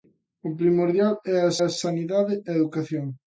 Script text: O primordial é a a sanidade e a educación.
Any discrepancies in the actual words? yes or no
no